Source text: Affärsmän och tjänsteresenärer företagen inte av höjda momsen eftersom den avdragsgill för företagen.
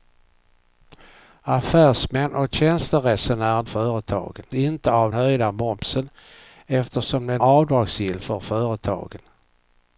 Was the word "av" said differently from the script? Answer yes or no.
no